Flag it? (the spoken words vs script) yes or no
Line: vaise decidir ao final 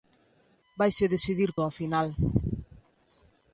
no